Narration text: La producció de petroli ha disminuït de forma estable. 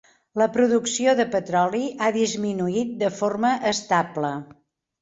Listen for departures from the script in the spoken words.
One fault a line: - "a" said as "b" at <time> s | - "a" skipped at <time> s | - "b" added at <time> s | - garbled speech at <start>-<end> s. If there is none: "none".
none